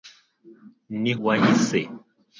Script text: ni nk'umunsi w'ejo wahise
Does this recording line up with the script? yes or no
no